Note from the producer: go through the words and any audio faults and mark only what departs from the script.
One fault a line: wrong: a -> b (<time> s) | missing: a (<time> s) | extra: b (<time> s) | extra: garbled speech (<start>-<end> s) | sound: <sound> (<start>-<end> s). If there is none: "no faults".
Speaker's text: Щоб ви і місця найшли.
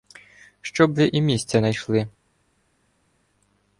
no faults